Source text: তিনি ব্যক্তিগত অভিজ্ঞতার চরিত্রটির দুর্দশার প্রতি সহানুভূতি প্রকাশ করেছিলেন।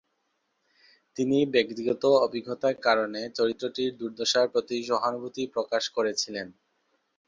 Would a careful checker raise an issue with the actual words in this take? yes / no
yes